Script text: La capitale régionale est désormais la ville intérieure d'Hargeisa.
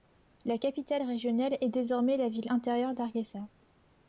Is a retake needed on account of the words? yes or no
no